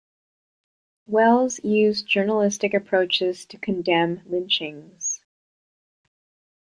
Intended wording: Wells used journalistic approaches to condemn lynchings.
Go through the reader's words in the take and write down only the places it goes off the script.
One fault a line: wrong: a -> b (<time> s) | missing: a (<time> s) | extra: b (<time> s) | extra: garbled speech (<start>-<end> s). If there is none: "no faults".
no faults